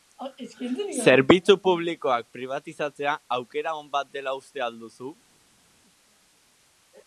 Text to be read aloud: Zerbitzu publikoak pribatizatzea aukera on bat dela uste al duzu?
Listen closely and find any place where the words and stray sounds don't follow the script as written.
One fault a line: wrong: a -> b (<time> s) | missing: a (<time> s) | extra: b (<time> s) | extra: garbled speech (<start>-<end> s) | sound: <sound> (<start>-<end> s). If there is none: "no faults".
no faults